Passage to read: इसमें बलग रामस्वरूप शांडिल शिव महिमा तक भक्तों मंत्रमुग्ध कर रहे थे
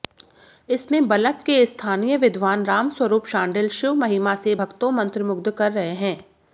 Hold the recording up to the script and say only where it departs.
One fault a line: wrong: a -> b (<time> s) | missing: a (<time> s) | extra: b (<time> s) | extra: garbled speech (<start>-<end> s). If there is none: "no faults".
extra: के स्थानीय विद्वान (1.4 s)
wrong: तक -> से (4.3 s)
wrong: थे -> हैं (5.9 s)